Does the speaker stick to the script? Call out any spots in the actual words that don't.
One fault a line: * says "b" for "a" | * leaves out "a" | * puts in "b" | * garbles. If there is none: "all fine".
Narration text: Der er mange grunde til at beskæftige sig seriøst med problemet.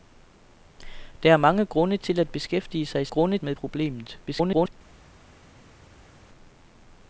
* says "grunde" for "seriøst"
* garbles